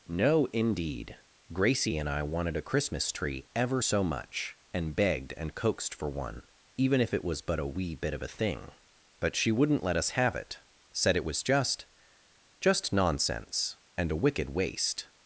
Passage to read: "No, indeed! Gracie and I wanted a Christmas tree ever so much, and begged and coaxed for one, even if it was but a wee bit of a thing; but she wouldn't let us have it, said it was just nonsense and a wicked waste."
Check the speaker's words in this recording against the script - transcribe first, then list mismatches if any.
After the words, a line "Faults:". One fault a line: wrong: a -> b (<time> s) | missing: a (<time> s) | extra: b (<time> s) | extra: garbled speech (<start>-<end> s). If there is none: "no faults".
"No, indeed! Gracie and I wanted a Christmas tree ever so much, and begged and coaxed for one, even if it was but a wee bit of a thing; but she wouldn't let us have it, said it was just just nonsense and a wicked waste."
Faults:
extra: just (12.6 s)